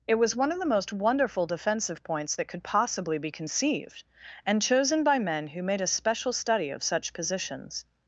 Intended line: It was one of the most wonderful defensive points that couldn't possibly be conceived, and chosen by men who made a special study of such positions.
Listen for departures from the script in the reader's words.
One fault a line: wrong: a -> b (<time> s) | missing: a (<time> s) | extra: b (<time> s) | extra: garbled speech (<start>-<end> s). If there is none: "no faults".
wrong: couldn't -> could (2.5 s)